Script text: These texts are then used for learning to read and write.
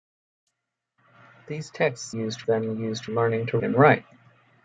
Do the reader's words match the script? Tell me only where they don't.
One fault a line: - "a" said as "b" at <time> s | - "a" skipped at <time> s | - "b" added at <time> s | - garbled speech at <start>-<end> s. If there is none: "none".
- "are" said as "used" at 2.1 s
- "for" skipped at 3.1 s
- "read" skipped at 3.6 s